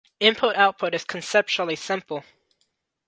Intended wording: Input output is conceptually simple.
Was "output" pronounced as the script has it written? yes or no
yes